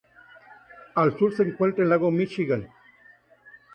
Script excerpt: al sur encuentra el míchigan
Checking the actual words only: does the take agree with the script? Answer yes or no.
no